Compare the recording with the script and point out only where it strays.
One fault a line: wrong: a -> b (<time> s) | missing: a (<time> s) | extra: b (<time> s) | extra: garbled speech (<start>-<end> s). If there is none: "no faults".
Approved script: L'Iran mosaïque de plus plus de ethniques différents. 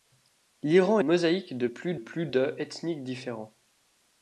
no faults